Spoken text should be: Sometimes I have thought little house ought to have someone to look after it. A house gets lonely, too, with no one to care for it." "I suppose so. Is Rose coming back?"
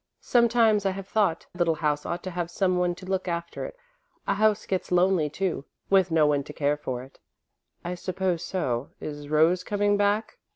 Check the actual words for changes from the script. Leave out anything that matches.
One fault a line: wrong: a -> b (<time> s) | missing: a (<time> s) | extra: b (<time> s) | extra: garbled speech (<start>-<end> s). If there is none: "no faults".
no faults